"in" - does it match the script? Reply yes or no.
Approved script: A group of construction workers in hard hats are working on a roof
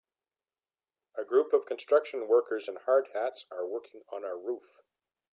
yes